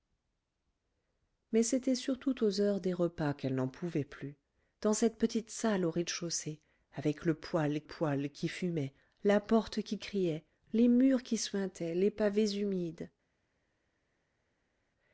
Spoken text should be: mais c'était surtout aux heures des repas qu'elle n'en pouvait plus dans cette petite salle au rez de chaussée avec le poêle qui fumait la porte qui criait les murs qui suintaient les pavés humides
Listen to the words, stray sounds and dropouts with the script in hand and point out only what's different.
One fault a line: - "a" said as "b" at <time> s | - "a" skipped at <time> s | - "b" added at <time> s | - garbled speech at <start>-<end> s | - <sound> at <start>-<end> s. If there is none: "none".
- "poêle" added at 7.8 s